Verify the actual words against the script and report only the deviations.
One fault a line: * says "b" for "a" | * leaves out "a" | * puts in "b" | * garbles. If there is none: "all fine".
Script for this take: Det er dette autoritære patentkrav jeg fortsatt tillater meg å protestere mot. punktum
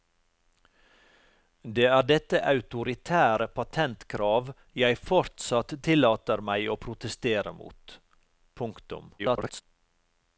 * garbles